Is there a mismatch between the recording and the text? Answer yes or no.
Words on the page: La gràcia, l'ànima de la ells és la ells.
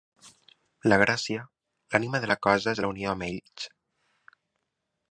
yes